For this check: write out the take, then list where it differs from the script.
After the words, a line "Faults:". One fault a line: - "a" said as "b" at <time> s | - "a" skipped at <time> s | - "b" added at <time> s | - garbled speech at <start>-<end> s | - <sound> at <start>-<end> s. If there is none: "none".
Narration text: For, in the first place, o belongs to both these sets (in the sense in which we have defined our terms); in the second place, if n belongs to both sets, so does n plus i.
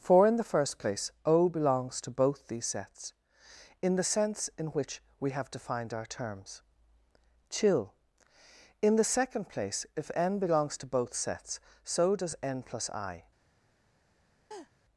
For, in the first place, o belongs to both these sets (in the sense in which we have defined our terms); chill in the second place, if n belongs to both sets, so does n plus i.
Faults:
- "chill" added at 7.5 s
- laugh at 14.5-14.7 s